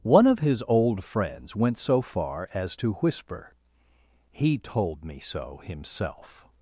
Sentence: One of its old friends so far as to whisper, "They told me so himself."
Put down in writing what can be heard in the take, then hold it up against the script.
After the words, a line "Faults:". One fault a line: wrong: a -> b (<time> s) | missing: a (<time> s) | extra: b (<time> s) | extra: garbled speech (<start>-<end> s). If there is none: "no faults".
One of his old friends went so far as to whisper, "He told me so himself."
Faults:
wrong: its -> his (0.4 s)
extra: went (1.6 s)
wrong: They -> He (4.3 s)